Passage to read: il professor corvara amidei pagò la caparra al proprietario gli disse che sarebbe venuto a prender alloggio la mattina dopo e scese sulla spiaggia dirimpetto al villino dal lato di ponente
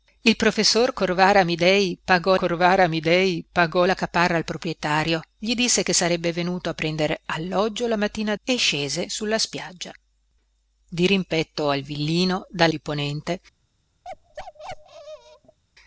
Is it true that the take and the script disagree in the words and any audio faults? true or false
true